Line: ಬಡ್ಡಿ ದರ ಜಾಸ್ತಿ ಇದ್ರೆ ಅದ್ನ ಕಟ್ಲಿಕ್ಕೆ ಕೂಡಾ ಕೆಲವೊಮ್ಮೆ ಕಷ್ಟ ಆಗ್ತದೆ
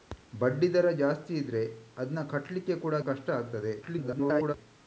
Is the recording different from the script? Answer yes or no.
yes